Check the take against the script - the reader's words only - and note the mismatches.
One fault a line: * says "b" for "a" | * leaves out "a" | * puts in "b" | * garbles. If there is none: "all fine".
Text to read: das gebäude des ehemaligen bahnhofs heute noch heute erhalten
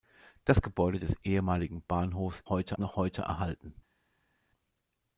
all fine